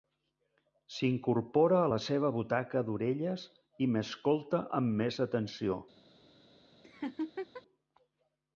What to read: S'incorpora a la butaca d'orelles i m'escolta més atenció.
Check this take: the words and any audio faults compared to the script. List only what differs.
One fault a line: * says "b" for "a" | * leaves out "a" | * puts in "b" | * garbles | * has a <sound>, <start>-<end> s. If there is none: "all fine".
* puts in "seva"
* puts in "amb"
* has a laugh, 6.8-7.6 s